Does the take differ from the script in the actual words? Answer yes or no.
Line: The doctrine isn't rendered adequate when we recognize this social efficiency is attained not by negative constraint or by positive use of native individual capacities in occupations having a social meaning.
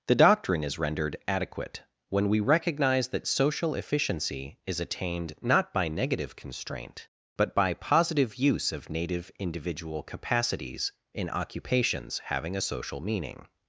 yes